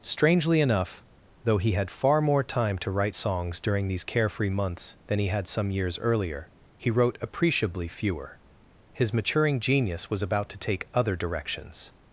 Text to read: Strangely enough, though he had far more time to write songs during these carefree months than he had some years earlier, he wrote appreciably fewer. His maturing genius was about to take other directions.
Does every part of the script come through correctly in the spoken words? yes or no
yes